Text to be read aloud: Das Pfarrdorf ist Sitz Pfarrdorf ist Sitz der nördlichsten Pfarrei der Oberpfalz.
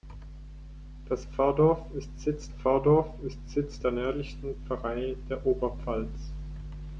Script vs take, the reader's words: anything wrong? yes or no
no